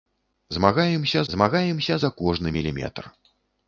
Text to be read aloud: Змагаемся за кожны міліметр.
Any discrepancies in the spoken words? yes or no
yes